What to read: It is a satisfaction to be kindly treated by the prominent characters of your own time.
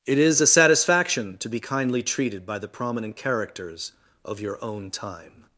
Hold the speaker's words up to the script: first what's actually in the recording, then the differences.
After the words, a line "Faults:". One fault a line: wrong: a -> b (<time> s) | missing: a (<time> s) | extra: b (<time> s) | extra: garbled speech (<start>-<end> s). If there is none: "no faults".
It is a satisfaction to be kindly treated by the prominent characters of your own time.
Faults:
no faults